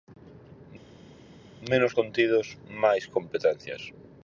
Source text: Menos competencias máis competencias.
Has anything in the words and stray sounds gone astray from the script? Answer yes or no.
yes